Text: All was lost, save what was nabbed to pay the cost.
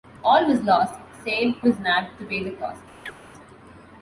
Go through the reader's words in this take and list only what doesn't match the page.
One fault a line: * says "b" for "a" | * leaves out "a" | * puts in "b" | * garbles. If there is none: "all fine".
* leaves out "what"